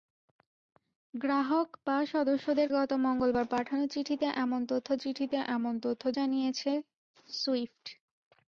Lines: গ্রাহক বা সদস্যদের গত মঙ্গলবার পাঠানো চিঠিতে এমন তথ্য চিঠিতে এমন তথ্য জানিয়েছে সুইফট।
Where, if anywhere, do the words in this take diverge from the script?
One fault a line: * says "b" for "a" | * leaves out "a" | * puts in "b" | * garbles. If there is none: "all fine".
all fine